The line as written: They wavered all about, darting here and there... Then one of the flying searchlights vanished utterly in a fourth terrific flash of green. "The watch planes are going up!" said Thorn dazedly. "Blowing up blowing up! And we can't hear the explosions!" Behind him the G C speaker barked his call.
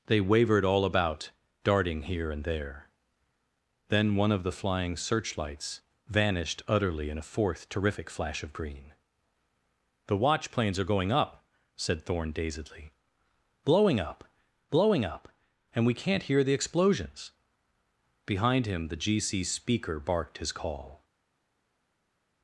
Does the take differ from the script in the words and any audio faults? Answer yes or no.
no